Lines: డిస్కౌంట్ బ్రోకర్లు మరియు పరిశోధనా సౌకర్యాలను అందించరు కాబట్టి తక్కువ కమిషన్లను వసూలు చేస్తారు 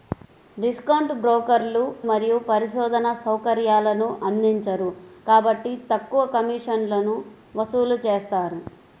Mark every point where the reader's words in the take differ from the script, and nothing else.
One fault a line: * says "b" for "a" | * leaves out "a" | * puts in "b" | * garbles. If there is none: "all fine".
all fine